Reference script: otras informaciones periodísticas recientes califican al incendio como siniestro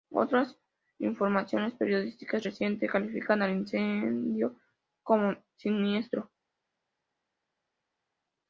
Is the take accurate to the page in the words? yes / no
yes